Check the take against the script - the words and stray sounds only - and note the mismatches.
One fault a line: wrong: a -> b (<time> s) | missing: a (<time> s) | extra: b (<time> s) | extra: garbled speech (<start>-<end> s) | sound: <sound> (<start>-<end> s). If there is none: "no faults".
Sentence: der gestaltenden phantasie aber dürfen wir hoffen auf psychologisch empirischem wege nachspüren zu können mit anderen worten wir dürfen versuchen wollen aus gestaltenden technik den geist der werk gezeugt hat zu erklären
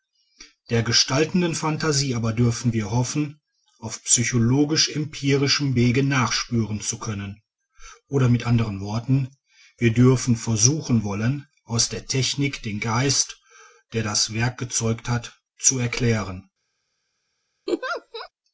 extra: oder (8.1 s)
wrong: gestaltenden -> der (11.9 s)
extra: das (14.0 s)
sound: laugh (17.7-18.3 s)